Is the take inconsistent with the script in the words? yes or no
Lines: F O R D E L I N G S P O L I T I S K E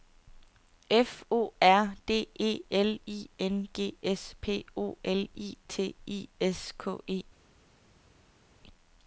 no